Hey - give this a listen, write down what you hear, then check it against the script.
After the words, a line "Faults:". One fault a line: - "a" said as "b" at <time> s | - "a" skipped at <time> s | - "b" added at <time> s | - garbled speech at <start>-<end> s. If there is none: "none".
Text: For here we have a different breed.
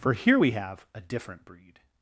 For here we have a different breed.
Faults:
none